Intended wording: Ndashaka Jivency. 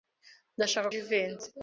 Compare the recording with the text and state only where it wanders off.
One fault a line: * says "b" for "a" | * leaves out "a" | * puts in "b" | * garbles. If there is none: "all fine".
all fine